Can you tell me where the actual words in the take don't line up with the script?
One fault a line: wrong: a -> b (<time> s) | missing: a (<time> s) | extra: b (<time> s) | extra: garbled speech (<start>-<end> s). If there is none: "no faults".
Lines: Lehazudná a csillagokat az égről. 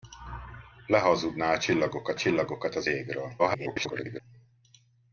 extra: csillagokat (2.1 s)
extra: garbled speech (3.4-4.2 s)